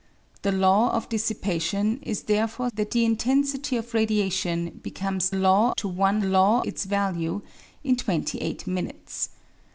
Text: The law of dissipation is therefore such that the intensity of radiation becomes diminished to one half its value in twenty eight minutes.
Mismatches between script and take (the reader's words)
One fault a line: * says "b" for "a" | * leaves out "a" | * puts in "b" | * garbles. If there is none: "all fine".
* leaves out "such"
* says "law" for "diminished"
* says "law" for "half"